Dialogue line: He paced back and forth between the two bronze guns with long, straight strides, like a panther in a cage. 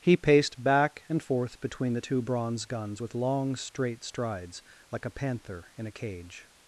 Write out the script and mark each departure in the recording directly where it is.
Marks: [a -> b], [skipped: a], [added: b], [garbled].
He paced back and forth between the two bronze guns with long, straight strides, like a panther in a cage.